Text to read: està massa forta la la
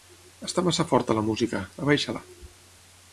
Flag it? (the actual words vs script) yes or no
yes